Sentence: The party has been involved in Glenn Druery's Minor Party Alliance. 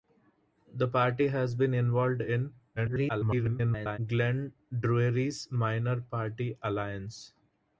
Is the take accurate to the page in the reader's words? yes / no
no